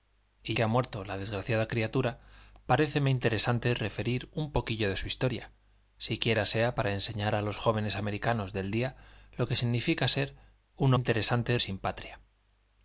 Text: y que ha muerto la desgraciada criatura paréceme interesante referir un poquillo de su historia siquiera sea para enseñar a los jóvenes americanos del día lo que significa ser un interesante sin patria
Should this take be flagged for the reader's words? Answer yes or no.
no